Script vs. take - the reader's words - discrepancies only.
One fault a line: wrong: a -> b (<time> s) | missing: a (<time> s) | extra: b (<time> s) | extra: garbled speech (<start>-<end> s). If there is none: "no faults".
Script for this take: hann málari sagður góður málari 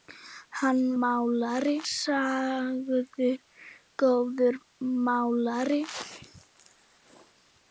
no faults